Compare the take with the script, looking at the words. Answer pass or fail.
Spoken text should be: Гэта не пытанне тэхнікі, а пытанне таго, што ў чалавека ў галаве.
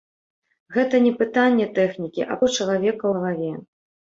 fail